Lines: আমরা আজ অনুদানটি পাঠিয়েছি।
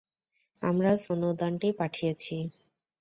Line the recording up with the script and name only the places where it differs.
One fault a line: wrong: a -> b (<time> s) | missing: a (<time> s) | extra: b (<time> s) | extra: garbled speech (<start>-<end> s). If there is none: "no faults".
no faults